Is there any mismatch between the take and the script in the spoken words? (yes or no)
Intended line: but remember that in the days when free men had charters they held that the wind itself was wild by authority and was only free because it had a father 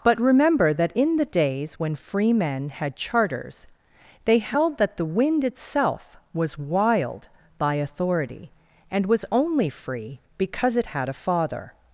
no